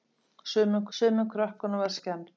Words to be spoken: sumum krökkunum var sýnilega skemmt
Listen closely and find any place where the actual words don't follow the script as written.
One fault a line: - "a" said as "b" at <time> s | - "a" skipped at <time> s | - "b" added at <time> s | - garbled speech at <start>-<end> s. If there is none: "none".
- "sumum" added at 1.0 s
- "sýnilega" skipped at 2.0 s